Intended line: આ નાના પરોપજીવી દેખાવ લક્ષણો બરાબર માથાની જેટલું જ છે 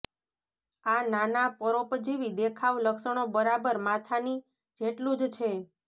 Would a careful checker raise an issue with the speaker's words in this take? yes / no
no